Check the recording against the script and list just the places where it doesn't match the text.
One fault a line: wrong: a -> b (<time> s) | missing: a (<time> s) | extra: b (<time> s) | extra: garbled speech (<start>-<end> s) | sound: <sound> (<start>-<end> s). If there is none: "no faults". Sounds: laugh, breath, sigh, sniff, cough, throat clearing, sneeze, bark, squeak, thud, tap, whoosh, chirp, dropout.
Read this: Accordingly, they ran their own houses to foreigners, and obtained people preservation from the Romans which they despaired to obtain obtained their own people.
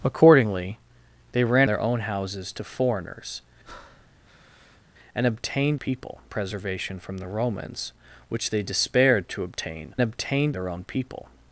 sound: breath (3.6-4.8 s)